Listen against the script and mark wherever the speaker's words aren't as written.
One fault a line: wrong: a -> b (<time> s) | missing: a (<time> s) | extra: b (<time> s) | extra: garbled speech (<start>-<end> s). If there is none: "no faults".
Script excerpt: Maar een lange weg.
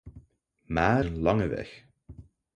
no faults